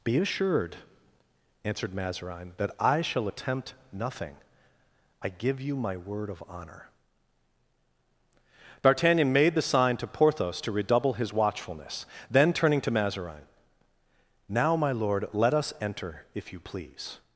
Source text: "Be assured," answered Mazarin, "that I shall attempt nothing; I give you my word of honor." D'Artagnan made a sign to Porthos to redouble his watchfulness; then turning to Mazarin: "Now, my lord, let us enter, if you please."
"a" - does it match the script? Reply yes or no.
no